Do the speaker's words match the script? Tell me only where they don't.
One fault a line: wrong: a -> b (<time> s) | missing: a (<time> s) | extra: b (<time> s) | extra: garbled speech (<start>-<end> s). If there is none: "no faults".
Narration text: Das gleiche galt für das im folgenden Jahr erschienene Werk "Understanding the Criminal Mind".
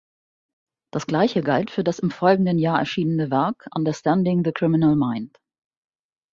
no faults